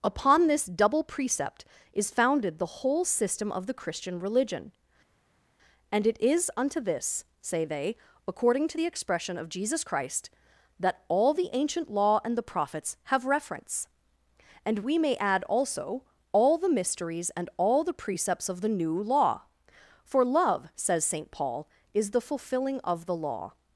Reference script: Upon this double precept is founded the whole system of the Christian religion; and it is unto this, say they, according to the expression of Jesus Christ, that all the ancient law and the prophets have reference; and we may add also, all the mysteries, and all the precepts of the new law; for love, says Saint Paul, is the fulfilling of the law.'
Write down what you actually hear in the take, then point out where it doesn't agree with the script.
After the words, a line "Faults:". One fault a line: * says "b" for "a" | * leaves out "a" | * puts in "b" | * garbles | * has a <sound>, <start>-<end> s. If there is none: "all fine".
Upon this double precept is founded the whole system of the Christian religion; and it is unto this, say they, according to the expression of Jesus Christ, that all the ancient law and the prophets have reference; and we may add also, all the mysteries, and all the precepts of the new law; for love, says Saint Paul, is the fulfilling of the law.'
Faults:
all fine